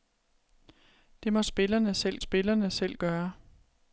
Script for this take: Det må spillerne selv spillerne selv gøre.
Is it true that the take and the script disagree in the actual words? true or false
false